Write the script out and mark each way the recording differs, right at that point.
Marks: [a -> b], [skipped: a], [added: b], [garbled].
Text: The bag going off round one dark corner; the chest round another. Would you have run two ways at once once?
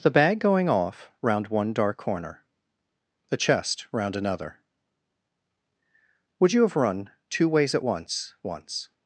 The bag going off round one dark corner; the chest round another. Would you have run two ways at once once?